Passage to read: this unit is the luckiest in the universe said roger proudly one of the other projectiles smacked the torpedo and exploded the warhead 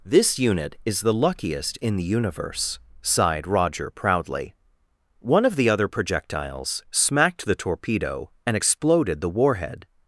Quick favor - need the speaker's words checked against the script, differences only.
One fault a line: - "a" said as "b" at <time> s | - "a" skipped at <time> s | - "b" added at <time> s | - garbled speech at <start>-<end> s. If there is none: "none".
- "said" said as "sighed" at 3.0 s